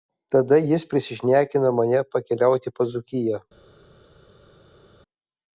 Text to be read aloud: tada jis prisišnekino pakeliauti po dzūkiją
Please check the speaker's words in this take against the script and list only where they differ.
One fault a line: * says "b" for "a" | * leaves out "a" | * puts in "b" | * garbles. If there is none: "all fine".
* puts in "mane"